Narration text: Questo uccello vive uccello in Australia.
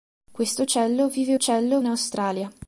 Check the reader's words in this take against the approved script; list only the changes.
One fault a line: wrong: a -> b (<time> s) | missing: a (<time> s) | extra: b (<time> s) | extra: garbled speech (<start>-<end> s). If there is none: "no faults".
no faults